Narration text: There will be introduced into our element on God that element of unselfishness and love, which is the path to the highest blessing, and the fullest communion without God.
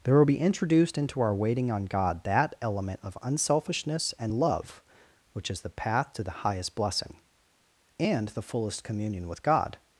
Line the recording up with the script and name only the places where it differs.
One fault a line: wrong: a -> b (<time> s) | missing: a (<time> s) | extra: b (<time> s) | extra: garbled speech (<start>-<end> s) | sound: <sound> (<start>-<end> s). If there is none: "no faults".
wrong: element -> waiting (1.3 s)
wrong: without -> with (9.3 s)